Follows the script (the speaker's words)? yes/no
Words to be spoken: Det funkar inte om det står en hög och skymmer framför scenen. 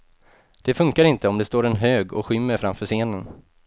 yes